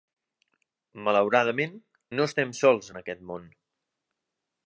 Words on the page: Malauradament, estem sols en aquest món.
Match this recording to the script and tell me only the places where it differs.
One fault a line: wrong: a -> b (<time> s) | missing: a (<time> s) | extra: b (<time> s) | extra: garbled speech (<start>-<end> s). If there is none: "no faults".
extra: no (2.2 s)